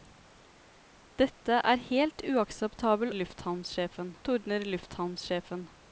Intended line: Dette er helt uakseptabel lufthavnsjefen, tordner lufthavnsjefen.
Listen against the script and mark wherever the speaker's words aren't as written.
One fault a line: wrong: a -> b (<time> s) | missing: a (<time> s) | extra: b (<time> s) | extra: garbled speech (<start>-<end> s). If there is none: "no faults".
no faults